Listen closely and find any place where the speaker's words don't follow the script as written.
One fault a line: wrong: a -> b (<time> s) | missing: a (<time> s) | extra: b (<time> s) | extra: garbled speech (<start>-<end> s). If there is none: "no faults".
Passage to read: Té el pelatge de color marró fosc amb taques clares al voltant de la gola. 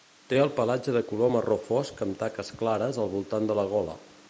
no faults